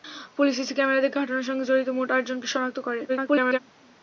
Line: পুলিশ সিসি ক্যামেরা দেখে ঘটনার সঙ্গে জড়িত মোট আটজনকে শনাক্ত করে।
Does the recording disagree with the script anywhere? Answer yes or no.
yes